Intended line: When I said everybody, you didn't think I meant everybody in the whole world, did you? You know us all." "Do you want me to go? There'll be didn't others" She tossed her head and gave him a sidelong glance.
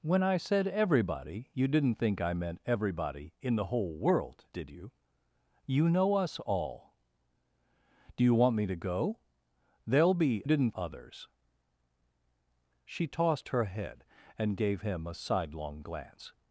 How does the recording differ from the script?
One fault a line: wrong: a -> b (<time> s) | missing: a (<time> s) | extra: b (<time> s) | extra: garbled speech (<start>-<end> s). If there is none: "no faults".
no faults